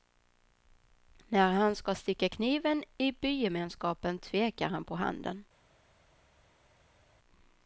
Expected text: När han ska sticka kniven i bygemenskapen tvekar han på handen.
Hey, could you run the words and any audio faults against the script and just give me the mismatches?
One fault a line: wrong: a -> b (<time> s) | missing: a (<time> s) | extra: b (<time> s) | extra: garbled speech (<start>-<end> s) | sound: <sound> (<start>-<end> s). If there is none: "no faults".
no faults